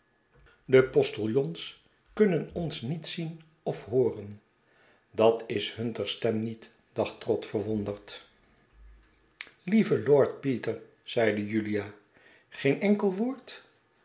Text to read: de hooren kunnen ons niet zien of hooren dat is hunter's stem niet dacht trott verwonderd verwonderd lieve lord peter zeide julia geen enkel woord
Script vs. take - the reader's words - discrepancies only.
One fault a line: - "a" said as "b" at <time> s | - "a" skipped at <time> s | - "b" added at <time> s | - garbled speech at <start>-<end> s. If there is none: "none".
- "hooren" said as "postiljons" at 0.8 s
- "verwonderd" skipped at 8.3 s